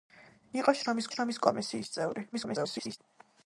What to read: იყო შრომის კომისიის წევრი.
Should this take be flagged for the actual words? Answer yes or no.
yes